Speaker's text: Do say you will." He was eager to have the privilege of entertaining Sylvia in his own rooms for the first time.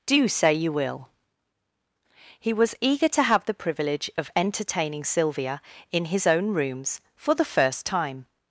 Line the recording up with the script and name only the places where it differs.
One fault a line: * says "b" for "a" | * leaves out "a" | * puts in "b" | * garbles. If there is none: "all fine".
all fine